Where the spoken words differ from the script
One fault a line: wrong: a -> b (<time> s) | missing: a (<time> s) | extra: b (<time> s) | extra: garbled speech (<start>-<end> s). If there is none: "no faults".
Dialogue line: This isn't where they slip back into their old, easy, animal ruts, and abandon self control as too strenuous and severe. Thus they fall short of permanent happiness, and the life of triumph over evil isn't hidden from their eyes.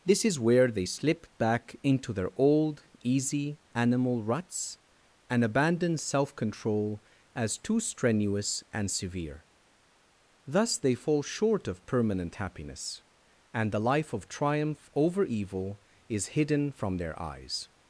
wrong: isn't -> is (0.2 s)
wrong: isn't -> is (16.1 s)